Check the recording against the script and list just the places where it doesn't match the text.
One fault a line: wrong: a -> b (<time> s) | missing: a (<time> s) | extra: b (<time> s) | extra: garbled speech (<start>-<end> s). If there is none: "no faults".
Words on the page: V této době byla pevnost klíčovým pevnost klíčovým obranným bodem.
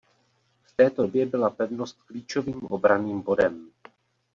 missing: pevnost klíčovým (2.6 s)